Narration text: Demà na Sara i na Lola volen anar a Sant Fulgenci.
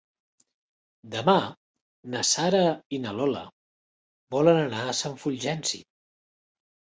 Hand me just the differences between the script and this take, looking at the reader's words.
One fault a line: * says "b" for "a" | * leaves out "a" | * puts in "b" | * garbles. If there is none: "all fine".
all fine